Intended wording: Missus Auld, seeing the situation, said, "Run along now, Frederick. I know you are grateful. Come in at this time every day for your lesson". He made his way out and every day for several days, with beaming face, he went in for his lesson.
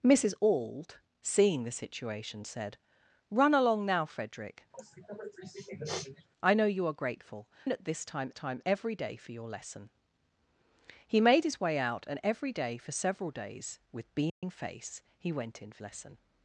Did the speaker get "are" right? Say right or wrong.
right